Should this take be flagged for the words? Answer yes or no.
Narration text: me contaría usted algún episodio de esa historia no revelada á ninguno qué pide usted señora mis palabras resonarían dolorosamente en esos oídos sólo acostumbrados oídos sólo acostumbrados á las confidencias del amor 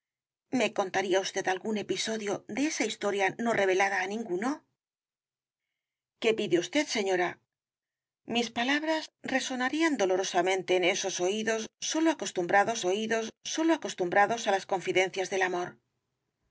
no